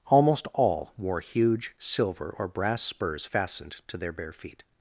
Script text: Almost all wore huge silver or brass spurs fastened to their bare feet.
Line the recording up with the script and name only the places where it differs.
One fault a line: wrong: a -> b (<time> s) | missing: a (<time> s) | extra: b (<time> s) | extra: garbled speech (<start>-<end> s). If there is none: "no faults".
no faults